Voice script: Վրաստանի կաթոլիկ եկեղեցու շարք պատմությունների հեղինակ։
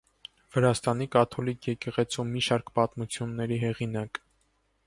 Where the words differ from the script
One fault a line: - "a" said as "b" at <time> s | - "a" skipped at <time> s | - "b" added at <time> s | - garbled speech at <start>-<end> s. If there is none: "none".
- "մի" added at 2.3 s